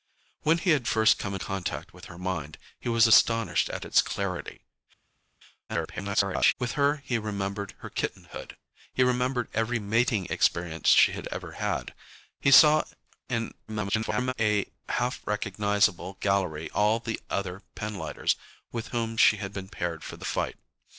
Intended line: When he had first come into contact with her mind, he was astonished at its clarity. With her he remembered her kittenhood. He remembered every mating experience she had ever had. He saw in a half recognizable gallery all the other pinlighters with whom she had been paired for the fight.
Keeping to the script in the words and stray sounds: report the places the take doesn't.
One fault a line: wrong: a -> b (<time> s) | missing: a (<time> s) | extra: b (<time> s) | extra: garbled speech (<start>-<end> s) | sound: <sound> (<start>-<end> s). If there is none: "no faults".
missing: into (1.4 s)
extra: garbled speech (5.7-6.5 s)
extra: garbled speech (13.7-14.3 s)